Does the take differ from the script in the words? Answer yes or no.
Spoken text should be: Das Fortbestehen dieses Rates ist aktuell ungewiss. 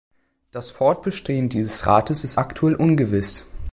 no